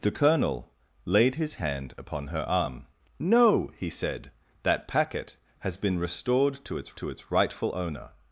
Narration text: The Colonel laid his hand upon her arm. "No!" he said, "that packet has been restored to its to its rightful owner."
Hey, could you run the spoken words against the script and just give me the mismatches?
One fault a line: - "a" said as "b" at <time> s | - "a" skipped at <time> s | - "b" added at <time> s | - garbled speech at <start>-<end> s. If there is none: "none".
none